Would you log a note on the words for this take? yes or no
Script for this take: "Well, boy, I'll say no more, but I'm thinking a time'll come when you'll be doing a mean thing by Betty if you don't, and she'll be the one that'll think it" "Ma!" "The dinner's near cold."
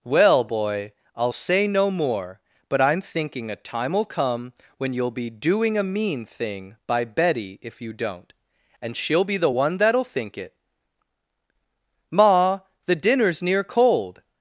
no